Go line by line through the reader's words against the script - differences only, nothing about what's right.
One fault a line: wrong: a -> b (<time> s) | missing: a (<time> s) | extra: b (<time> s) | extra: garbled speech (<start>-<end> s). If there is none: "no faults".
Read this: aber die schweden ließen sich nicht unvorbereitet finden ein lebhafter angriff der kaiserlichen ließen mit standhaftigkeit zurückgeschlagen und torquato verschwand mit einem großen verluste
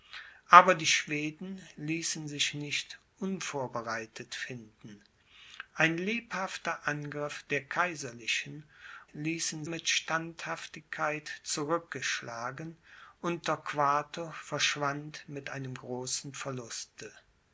no faults